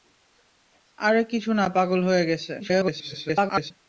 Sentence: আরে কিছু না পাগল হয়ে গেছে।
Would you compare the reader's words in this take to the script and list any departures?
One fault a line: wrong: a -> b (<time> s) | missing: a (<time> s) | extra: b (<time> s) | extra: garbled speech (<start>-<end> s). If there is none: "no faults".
extra: garbled speech (2.6-3.7 s)